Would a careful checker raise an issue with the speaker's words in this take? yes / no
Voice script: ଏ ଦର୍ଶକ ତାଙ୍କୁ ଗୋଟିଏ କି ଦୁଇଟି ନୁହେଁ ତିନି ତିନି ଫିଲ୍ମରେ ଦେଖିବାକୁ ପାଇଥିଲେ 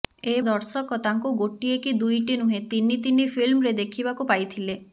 no